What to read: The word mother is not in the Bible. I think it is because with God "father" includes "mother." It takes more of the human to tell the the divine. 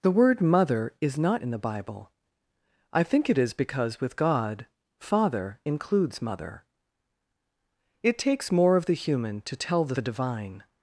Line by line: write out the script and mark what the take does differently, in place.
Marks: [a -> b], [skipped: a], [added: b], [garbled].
The word mother is not in the Bible. I think it is because with God "father" includes "mother." It takes more of the human to tell the the divine.